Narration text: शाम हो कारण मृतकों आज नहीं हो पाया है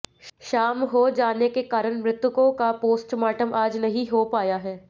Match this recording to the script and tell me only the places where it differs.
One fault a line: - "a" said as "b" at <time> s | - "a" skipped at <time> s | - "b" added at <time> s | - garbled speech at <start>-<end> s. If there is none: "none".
- "जाने के" added at 1.1 s
- "का पोस्टमार्टम" added at 2.5 s